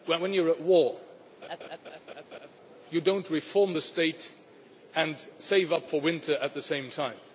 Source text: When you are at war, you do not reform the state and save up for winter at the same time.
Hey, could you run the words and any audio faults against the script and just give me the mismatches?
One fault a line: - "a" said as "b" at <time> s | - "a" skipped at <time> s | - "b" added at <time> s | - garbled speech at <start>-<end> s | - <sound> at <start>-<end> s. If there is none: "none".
- laugh at 1.4-2.5 s